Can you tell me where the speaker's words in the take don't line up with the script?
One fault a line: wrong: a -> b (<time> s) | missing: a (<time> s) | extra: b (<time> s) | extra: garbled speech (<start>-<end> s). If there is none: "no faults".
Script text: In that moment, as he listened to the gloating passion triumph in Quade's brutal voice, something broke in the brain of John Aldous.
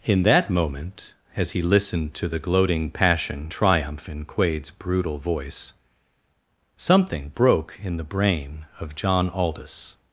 no faults